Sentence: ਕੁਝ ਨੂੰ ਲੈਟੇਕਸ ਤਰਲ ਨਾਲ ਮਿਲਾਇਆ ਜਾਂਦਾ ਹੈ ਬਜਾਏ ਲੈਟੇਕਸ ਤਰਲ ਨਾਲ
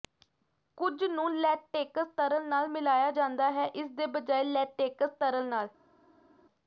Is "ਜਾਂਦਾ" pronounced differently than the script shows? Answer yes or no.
no